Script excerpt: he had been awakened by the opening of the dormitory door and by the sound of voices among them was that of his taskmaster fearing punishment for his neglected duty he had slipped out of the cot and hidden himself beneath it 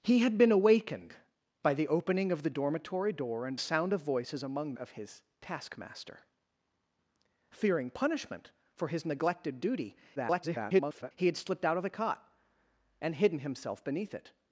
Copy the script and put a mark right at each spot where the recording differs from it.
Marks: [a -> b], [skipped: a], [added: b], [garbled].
he had been awakened by the opening of the dormitory door and [skipped: by the] sound of voices among [skipped: them was that] of his taskmaster fearing punishment for his neglected duty [garbled] he had slipped out of the cot and hidden himself beneath it